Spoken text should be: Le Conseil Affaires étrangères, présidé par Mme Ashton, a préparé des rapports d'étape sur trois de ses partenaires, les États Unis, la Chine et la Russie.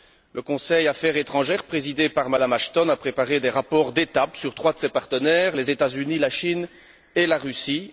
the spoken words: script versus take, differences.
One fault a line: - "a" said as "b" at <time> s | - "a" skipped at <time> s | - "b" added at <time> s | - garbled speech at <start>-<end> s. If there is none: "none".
none